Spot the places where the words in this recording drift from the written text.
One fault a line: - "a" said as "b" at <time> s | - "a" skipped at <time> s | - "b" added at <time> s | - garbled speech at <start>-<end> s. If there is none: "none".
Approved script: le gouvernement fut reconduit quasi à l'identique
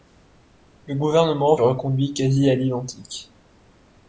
- "fut" skipped at 1.6 s